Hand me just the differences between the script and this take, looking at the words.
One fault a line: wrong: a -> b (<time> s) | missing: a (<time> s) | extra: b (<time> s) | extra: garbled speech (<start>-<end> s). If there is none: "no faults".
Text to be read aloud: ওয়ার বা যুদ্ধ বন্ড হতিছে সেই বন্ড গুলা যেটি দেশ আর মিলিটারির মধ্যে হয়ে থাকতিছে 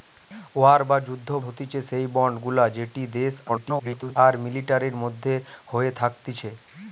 missing: বন্ড (1.3 s)
extra: garbled speech (3.5-4.2 s)